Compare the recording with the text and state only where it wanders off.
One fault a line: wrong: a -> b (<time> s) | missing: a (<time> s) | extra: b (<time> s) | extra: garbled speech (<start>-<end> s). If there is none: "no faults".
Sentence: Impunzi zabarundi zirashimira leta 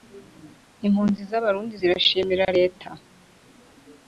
no faults